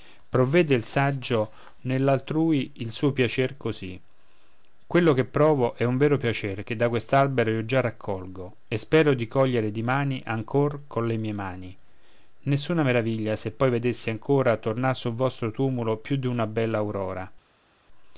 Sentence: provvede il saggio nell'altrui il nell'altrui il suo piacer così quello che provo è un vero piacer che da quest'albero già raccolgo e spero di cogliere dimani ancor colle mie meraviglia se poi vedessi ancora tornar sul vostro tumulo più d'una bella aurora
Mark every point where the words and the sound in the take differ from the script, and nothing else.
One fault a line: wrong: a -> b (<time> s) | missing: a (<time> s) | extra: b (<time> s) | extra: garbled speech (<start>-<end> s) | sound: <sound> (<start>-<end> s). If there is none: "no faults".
missing: nell'altrui il (2.9 s)
extra: io (7.5 s)
extra: mani nessuna (11.3 s)